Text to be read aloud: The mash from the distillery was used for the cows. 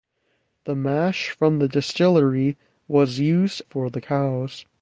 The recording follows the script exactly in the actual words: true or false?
true